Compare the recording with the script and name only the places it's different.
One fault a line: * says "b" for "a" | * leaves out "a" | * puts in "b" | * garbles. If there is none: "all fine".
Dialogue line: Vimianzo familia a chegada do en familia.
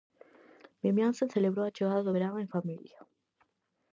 * says "celebrou" for "familia"
* puts in "verán"